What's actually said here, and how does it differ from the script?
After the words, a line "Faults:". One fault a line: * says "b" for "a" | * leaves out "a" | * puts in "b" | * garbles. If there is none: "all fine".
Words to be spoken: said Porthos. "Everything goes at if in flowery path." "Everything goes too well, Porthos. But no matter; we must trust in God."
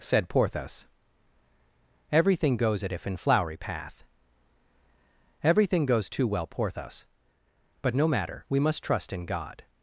said Porthos. "Everything goes at if in flowery path." "Everything goes too well, Porthos. But no matter; we must trust in God."
Faults:
all fine